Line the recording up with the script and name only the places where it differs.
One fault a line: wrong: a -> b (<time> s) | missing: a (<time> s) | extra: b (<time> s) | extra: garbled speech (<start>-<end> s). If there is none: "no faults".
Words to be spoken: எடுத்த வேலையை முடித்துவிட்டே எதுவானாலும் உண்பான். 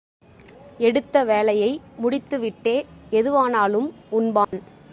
no faults